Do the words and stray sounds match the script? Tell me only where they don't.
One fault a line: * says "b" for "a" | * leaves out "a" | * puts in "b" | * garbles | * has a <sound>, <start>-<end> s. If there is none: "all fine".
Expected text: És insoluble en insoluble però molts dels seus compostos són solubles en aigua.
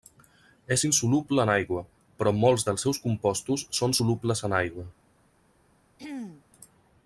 * says "aigua" for "insoluble"
* has a throat clearing, 6.0-6.4 s